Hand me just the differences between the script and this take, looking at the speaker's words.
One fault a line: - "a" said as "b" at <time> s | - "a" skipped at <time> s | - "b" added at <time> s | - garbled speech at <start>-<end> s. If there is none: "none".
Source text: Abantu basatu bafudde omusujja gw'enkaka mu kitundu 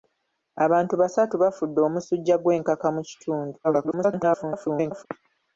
- garbled speech at 3.6-5.1 s